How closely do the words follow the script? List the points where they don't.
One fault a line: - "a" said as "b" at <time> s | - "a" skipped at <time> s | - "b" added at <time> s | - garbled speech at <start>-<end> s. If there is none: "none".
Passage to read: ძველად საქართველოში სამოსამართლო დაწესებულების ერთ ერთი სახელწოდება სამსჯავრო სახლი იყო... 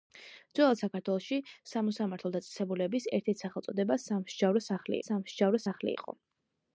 - "სამსჯავრო სახლი" added at 5.1 s